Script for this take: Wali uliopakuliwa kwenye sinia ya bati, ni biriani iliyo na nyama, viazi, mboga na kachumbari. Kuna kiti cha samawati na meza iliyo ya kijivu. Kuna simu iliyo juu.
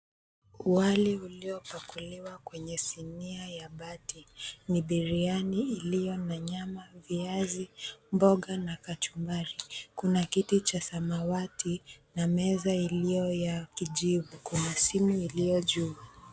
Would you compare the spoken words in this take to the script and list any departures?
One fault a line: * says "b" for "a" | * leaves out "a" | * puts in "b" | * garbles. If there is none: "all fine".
all fine